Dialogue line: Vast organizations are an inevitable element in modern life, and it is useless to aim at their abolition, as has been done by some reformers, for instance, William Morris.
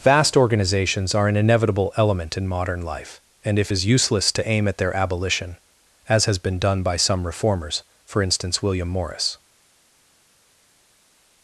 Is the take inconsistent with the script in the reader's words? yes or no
yes